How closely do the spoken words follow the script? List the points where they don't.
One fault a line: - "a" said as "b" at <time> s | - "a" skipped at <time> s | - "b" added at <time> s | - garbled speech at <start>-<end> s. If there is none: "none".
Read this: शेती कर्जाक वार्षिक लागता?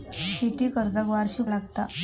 none